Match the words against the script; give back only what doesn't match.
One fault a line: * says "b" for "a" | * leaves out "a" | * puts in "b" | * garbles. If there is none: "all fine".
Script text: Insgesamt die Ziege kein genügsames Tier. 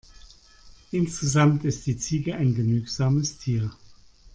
* puts in "ist"
* says "ein" for "kein"